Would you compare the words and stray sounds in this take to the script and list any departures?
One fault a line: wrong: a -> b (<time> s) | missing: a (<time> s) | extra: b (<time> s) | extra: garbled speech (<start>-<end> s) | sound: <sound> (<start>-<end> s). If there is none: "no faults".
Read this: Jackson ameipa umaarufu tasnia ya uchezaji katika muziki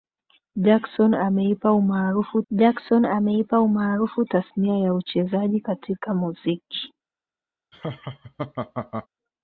extra: jackson ameipa umaarufu (2.5 s)
sound: laugh (7.7-9.1 s)